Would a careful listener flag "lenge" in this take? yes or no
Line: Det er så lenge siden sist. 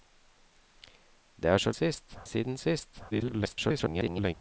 yes